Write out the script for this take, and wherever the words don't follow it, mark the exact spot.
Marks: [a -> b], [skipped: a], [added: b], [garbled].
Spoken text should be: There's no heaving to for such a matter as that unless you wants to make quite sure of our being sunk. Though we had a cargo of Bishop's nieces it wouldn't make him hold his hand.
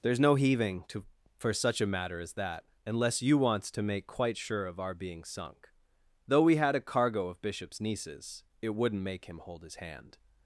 There's no heaving to for such a matter as that unless you wants to make quite sure of our being sunk. Though we had a cargo of Bishop's nieces it wouldn't make him hold his hand.